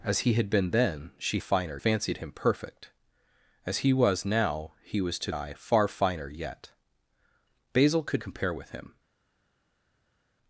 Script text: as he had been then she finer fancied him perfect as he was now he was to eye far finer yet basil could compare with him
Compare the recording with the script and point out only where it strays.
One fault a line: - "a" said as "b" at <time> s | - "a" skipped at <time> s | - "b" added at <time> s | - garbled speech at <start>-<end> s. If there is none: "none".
none